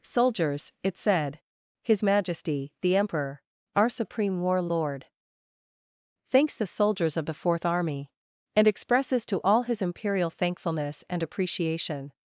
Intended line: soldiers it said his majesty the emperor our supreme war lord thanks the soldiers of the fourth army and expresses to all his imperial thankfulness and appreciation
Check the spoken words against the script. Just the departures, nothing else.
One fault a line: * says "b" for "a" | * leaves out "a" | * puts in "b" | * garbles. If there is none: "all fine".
all fine